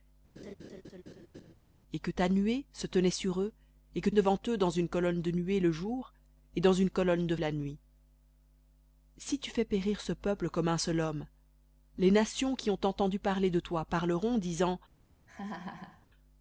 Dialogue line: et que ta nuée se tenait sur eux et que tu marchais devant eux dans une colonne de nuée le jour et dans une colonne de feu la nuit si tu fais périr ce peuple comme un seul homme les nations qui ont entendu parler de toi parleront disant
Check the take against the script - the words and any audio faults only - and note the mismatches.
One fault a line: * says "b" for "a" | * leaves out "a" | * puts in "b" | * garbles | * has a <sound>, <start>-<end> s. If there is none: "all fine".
* has a laugh, 0.4-1.5 s
* leaves out "tu marchais"
* leaves out "feu"
* has a laugh, 15.3-16.1 s